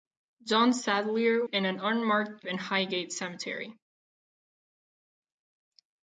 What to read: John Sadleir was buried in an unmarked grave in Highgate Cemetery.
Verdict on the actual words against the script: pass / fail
fail